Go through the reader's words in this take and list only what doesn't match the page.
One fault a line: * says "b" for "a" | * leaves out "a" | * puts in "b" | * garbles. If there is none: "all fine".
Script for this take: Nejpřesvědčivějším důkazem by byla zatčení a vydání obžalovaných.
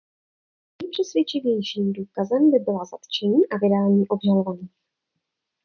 all fine